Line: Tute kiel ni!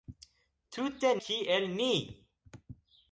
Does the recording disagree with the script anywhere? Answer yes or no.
no